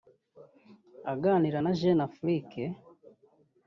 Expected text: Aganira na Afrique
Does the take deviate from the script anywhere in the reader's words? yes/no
yes